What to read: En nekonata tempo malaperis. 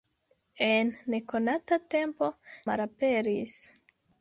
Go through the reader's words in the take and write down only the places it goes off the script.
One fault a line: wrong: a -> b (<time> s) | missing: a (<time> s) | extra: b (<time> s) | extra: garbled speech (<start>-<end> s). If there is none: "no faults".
no faults